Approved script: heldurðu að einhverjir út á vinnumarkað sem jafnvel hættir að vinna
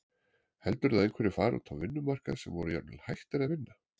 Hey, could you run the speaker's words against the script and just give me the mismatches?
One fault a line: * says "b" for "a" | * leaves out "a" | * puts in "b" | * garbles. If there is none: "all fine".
* puts in "fari"
* puts in "voru"